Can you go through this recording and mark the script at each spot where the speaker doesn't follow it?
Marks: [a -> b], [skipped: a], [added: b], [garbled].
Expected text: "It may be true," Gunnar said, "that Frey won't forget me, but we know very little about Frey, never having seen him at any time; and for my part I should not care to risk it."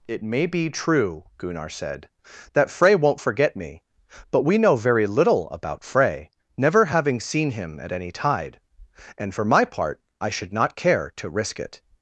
"It may be true," Gunnar said, "that Frey won't forget me, but we know very little about Frey, never having seen him at any [time; -> tide] and for my part I should not care to risk it."